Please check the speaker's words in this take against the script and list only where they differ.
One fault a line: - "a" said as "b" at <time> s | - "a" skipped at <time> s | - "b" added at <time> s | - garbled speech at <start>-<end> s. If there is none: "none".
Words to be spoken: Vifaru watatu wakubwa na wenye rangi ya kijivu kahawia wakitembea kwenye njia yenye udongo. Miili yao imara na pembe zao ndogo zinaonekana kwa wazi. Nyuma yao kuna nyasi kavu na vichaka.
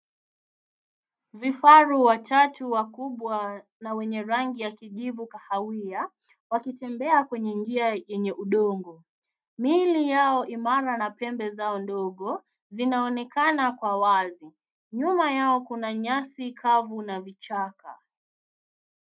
none